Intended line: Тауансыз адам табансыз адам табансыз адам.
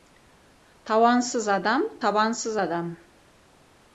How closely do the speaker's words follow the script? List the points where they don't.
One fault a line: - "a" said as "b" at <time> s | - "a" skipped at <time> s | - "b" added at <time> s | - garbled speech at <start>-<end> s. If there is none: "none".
- "табансыз адам" skipped at 2.9 s